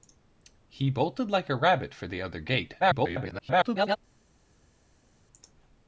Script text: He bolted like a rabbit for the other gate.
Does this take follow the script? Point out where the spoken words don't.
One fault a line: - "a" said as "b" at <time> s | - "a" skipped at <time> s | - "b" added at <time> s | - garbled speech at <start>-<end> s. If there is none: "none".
- garbled speech at 2.8-4.0 s